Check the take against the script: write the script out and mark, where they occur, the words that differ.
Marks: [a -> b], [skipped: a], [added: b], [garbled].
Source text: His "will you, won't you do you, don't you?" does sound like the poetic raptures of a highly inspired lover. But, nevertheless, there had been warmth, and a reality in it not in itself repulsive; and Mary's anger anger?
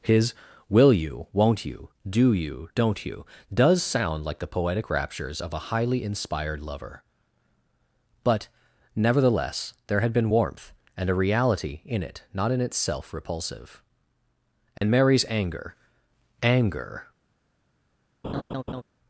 His "will you, won't you do you, don't you?" does sound like the poetic raptures of a highly inspired lover. But, nevertheless, there had been warmth, and a reality in it not in itself repulsive; and Mary's anger anger?